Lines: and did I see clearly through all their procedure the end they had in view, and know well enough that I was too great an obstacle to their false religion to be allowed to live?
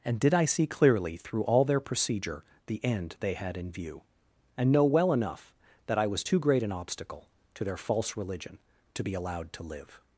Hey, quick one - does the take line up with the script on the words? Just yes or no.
yes